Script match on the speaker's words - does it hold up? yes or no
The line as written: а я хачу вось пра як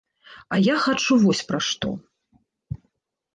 no